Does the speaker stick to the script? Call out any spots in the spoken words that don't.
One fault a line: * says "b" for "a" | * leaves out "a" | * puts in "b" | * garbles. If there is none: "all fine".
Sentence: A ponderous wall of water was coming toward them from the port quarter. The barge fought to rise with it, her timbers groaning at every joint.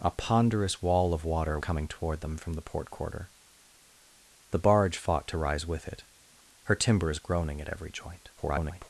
* leaves out "was"
* garbles